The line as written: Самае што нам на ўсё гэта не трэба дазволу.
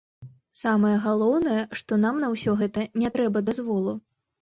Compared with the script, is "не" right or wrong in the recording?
right